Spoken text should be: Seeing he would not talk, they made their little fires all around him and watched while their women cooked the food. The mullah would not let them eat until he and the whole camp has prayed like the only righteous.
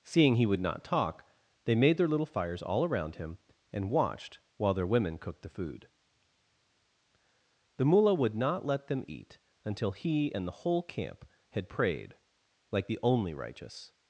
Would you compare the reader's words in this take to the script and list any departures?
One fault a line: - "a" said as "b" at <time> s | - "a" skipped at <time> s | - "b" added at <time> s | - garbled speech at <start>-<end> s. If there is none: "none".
- "has" said as "had" at 11.5 s